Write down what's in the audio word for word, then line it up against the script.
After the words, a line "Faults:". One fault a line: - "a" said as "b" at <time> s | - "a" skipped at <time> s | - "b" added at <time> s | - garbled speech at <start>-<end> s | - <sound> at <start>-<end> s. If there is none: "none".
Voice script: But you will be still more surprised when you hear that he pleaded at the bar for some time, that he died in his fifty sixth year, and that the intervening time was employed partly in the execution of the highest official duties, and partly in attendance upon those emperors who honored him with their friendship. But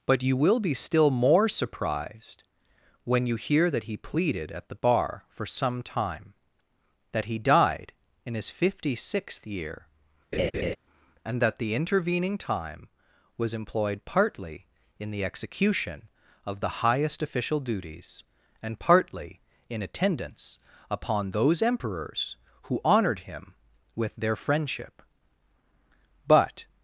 But you will be still more surprised when you hear that he pleaded at the bar for some time, that he died in his fifty sixth year, and that the intervening time was employed partly in the execution of the highest official duties, and partly in attendance upon those emperors who honored him with their friendship. But
Faults:
- laugh at 10.3-10.8 s